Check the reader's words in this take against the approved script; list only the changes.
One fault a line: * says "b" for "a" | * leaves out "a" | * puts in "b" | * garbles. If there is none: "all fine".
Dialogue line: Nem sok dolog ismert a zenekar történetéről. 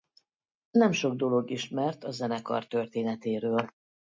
all fine